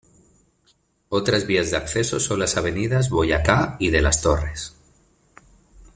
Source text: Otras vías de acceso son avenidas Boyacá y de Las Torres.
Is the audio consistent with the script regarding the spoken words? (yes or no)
no